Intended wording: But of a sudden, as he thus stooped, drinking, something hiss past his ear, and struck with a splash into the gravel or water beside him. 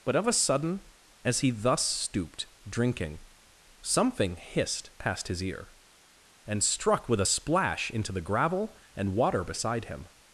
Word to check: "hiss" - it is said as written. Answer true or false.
false